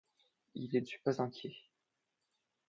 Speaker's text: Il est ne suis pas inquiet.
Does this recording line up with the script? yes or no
yes